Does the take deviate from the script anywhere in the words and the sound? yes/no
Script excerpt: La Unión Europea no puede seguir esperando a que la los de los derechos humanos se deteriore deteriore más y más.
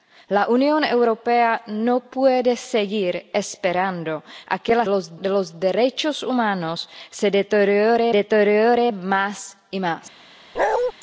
yes